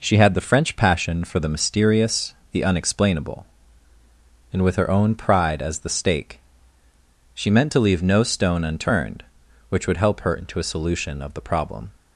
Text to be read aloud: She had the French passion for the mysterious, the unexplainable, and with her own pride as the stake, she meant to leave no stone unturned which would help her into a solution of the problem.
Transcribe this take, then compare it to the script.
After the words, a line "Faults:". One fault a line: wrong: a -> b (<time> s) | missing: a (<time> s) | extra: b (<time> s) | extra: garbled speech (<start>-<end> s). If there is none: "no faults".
She had the French passion for the mysterious, the unexplainable, and with her own pride as the stake, she meant to leave no stone unturned which would help her into a solution of the problem.
Faults:
no faults